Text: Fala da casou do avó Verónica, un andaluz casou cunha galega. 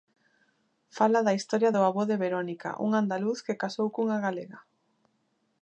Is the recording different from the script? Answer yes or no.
yes